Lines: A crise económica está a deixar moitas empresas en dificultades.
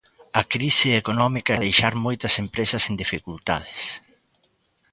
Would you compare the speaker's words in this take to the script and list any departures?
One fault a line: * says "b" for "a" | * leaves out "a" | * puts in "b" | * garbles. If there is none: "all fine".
* leaves out "está"